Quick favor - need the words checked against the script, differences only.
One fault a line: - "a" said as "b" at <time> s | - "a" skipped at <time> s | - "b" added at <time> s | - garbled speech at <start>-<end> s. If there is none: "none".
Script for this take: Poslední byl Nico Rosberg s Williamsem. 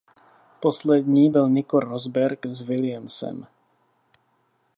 none